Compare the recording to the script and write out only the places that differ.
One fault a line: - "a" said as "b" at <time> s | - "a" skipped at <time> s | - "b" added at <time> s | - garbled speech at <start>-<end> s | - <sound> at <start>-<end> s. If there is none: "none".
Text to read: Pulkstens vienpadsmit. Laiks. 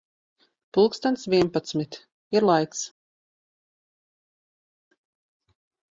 - "Ir" added at 2.4 s